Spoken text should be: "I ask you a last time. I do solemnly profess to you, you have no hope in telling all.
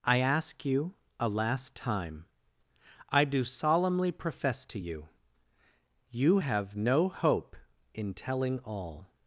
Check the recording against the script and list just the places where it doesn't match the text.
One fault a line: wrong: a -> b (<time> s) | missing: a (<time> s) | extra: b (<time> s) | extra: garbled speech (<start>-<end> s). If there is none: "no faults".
no faults